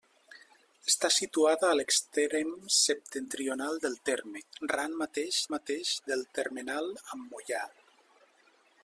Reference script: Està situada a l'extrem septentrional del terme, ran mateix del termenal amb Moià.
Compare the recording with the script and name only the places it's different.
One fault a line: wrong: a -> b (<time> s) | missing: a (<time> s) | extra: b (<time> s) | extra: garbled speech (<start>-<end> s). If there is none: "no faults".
extra: mateix (5.5 s)